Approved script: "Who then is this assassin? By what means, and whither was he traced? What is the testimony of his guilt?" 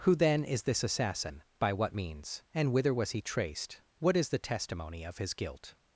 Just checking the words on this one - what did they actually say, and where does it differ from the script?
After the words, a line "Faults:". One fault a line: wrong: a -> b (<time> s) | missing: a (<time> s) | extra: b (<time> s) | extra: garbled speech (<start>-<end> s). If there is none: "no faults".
"Who then is this assassin? By what means, and whither was he traced? What is the testimony of his guilt?"
Faults:
no faults